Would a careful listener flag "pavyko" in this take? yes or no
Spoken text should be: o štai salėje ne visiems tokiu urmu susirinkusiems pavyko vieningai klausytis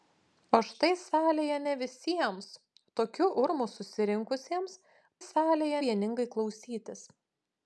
yes